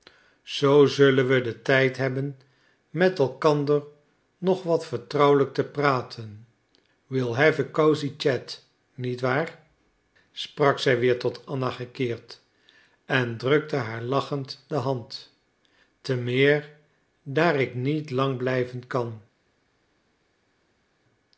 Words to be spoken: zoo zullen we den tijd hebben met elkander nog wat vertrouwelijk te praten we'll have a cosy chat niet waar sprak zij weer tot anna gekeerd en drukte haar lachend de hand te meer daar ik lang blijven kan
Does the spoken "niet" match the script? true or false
true